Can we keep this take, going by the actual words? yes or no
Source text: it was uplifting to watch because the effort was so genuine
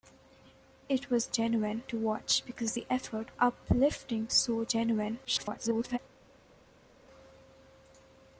no